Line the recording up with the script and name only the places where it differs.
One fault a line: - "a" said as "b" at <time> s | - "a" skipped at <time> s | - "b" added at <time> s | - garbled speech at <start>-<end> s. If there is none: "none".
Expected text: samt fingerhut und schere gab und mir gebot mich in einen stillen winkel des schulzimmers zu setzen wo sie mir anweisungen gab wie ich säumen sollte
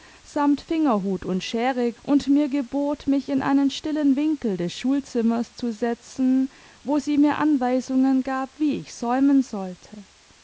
- "gab" skipped at 1.9 s